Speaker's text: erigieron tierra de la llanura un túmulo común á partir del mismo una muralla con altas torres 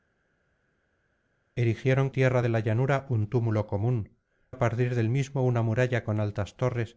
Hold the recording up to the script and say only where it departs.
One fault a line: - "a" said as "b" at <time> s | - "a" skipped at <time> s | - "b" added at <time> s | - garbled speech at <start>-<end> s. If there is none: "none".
none